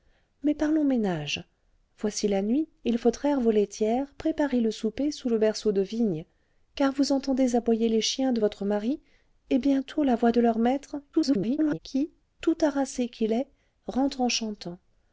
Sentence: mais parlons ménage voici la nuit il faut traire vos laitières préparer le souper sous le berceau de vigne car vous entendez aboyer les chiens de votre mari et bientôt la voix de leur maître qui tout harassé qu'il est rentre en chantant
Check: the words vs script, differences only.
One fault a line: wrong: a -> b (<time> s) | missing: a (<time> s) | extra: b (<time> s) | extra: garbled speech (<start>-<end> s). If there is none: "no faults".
extra: garbled speech (11.1-11.8 s)